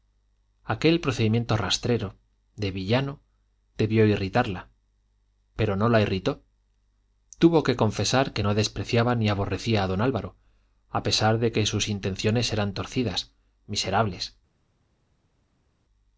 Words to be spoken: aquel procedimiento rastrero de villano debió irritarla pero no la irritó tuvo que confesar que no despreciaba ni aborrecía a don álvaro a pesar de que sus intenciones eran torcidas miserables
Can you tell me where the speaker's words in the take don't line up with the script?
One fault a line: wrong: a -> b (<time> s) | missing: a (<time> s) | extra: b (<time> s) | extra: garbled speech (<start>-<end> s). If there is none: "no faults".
no faults